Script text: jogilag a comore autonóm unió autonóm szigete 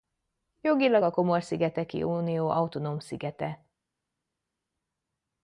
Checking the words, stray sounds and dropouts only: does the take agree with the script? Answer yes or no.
no